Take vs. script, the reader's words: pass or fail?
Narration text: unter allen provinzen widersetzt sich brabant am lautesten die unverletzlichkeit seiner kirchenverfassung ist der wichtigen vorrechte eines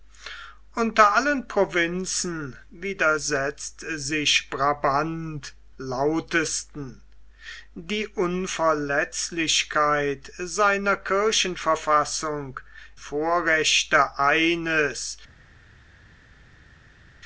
fail